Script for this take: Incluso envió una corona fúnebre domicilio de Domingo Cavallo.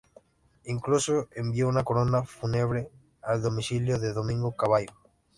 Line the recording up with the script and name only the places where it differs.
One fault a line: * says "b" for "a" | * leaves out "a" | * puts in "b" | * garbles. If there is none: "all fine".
* puts in "al"